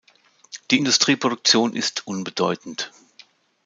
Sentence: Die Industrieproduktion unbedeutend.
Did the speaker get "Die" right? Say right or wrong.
right